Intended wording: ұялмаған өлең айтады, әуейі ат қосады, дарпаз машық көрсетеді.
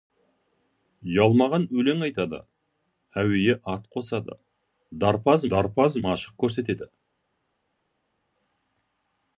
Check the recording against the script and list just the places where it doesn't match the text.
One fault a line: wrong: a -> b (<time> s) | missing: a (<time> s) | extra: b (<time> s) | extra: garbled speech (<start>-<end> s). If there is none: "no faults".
extra: дарпаз (5.5 s)